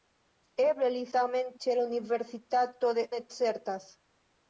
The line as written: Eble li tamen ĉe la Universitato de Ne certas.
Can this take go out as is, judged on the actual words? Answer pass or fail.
pass